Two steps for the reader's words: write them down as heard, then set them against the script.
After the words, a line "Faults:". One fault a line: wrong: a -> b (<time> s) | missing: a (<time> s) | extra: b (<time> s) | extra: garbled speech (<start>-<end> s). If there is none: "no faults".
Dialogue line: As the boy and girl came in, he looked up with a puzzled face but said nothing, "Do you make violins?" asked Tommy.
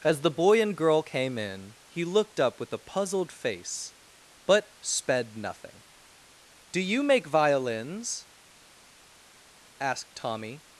As the boy and girl came in, he looked up with a puzzled face but sped nothing, "Do you make violins?" asked Tommy.
Faults:
wrong: said -> sped (4.8 s)